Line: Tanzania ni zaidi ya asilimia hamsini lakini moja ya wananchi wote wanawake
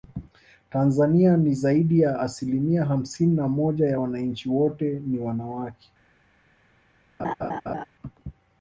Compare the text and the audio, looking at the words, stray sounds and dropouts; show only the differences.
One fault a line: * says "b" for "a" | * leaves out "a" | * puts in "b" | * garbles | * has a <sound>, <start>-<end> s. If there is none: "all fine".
* says "na" for "lakini"
* puts in "ni"
* has a laugh, 7.2-7.8 s